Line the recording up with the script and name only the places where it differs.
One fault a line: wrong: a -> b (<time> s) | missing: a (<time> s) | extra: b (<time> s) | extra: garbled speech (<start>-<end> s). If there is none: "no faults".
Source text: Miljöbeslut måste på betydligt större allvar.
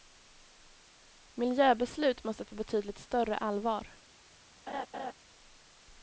no faults